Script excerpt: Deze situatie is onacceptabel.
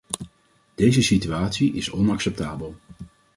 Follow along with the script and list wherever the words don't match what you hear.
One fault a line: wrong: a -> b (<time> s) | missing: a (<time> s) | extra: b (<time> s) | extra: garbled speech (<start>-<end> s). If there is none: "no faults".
no faults